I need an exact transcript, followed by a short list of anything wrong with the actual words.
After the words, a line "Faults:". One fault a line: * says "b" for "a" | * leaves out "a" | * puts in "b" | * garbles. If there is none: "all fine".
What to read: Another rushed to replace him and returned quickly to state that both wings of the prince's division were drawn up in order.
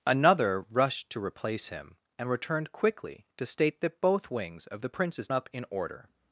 Another rushed to replace him and returned quickly to state that both wings of the prince's up in order.
Faults:
* leaves out "division were drawn"